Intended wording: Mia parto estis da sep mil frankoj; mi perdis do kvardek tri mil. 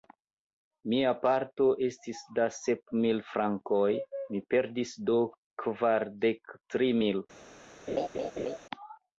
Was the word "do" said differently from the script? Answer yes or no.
no